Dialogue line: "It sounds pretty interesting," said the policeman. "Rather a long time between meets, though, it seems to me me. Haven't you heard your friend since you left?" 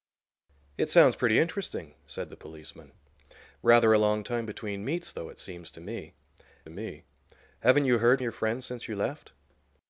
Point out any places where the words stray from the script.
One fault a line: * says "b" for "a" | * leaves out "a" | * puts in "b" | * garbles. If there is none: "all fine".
all fine